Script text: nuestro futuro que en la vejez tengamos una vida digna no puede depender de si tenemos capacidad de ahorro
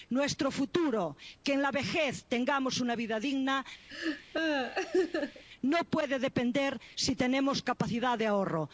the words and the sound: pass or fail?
fail